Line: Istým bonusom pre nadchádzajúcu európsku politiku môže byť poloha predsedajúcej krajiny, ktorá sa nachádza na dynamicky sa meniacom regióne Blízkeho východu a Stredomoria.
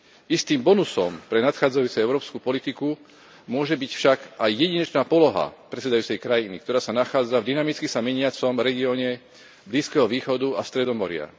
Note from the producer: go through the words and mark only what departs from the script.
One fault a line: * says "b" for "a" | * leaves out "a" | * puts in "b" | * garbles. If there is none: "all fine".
* puts in "však aj jedinečná"
* says "v" for "na"